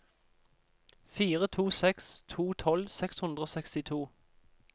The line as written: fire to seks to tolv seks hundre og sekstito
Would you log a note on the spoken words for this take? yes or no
no